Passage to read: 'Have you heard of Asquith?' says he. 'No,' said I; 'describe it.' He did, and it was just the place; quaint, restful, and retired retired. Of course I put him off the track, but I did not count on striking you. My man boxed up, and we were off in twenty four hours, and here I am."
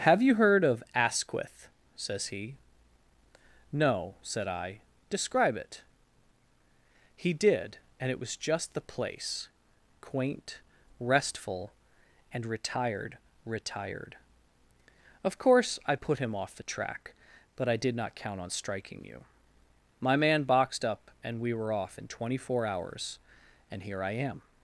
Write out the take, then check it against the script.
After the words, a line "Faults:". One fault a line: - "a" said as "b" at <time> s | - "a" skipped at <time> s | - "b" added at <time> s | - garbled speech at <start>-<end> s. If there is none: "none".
'Have you heard of Asquith?' says he. 'No,' said I; 'describe it.' He did, and it was just the place; quaint, restful, and retired retired. Of course I put him off the track, but I did not count on striking you. My man boxed up, and we were off in twenty four hours, and here I am."
Faults:
none